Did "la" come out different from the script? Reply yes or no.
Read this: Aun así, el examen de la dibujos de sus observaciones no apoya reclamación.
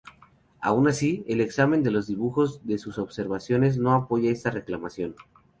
yes